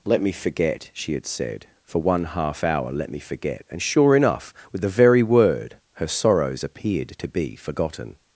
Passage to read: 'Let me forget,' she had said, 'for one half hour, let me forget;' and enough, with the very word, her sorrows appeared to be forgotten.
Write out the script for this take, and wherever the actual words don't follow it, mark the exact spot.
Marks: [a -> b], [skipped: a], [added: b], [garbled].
'Let me forget,' she had said, 'for one half hour, let me forget;' and [added: sure] enough, with the very word, her sorrows appeared to be forgotten.